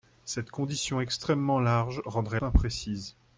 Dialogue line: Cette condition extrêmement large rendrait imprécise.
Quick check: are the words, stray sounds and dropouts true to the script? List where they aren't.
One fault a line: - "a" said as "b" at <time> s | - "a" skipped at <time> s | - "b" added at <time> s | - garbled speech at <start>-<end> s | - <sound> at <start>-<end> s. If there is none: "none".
none